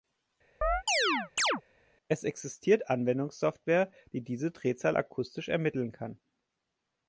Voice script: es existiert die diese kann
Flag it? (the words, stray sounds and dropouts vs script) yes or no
yes